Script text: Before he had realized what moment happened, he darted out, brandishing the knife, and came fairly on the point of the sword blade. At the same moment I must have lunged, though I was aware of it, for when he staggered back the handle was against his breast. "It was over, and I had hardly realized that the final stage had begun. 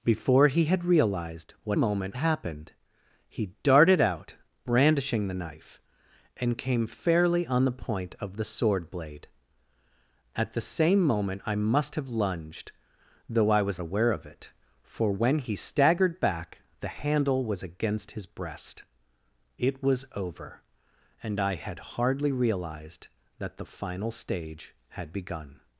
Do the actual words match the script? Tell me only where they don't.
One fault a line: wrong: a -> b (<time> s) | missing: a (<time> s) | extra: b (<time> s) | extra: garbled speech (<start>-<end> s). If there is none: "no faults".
no faults